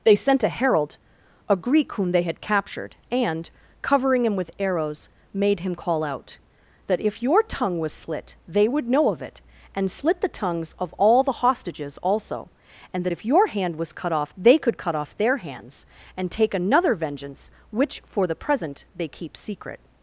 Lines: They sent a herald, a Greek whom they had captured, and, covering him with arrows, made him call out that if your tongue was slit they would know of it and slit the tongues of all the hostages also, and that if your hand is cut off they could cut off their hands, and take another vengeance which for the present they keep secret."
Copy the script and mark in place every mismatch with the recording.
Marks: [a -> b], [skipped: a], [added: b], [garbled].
They sent a herald, a Greek whom they had captured, and, covering him with arrows, made him call out that if your tongue was slit they would know of it and slit the tongues of all the hostages also, and that if your hand [is -> was] cut off they could cut off their hands, and take another vengeance which for the present they keep secret."